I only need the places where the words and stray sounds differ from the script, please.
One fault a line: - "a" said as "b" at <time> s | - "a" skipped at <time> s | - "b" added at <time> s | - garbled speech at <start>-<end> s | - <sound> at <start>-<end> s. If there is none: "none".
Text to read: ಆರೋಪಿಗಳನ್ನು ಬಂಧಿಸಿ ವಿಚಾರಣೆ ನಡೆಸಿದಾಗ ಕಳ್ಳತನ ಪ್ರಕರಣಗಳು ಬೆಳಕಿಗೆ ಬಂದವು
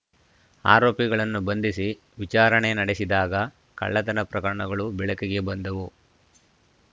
none